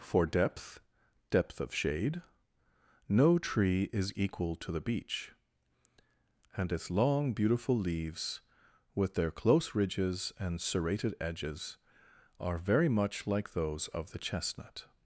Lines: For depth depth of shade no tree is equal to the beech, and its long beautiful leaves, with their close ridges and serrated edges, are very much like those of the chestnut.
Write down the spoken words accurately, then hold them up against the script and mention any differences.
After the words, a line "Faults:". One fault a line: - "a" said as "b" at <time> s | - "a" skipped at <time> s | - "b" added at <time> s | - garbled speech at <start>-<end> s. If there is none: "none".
For depth depth of shade no tree is equal to the beech, and its long beautiful leaves, with their close ridges and serrated edges, are very much like those of the chestnut.
Faults:
none